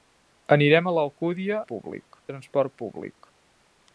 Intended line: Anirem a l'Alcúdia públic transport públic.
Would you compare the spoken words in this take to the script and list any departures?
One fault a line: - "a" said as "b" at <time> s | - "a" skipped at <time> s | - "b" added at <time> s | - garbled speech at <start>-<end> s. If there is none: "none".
none